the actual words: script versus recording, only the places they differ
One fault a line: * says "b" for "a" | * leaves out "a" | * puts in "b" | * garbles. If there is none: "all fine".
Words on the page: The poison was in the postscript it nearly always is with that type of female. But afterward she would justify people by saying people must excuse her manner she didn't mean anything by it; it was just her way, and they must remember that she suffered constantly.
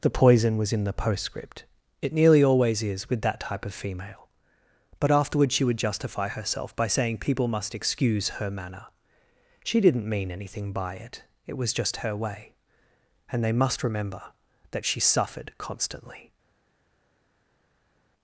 * says "herself" for "people"